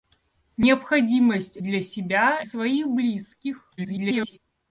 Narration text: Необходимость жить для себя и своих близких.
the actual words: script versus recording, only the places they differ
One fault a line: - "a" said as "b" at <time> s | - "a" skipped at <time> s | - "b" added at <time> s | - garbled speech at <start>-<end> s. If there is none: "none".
- "жить" skipped at 1.6 s
- "и" skipped at 2.4 s
- garbled speech at 3.8-4.4 s